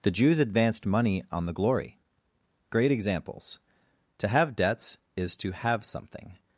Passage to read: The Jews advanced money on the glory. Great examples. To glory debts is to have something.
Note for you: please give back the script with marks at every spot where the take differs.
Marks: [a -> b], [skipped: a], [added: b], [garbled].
The Jews advanced money on the glory. Great examples. To [glory -> have] debts is to have something.